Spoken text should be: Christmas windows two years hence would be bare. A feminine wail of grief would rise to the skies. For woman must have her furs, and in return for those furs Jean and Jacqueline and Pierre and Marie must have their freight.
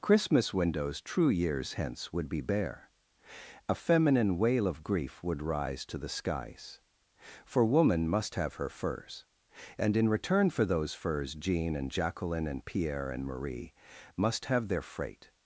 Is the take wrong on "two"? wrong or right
wrong